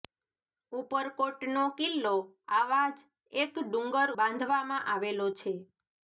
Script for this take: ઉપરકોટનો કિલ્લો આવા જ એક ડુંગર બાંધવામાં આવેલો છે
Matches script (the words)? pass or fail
pass